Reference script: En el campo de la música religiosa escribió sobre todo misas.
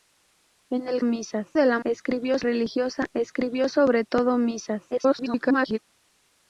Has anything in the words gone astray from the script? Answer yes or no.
yes